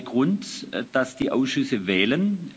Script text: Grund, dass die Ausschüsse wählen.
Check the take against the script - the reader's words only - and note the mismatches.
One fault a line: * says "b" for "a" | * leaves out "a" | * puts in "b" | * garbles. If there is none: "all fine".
all fine